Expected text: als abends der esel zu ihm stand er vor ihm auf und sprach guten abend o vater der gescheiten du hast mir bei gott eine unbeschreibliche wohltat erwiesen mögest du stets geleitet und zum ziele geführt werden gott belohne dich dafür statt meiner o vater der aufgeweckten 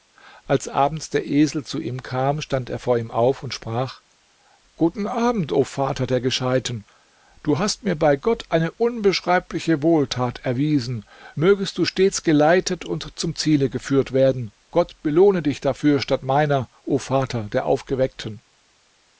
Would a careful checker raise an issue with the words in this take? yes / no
yes